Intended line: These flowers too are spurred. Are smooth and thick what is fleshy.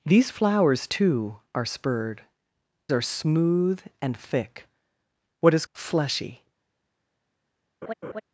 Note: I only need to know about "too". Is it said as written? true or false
true